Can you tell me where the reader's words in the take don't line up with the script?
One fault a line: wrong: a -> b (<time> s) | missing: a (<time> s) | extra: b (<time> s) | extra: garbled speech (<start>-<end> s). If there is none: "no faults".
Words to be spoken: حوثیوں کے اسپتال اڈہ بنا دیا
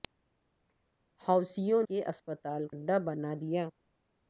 no faults